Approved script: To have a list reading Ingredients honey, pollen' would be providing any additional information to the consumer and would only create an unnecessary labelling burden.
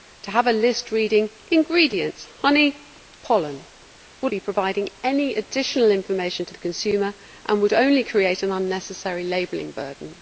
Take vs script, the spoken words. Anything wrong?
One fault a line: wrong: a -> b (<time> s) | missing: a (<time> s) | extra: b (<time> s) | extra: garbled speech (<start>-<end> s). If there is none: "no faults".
no faults